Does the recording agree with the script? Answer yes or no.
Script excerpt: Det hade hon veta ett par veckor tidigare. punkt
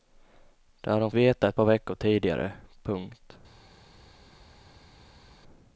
yes